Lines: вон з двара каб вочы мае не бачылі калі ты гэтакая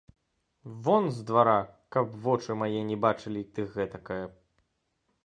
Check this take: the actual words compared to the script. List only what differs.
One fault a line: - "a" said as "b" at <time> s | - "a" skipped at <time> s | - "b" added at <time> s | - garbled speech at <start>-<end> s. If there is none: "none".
- "калі" skipped at 3.5 s